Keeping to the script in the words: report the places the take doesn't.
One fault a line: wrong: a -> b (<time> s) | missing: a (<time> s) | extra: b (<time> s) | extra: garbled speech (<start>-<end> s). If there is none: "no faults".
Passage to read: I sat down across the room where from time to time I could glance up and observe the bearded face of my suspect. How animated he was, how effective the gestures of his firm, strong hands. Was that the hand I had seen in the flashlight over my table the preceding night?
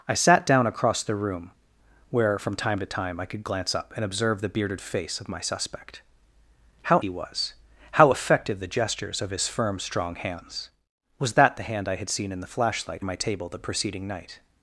missing: animated (7.0 s)
missing: over (13.1 s)